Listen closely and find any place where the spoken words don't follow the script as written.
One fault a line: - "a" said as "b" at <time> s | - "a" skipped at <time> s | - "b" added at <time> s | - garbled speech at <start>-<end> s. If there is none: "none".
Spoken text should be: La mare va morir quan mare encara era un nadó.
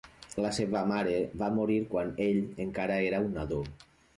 - "seva" added at 0.6 s
- "mare" said as "ell" at 2.3 s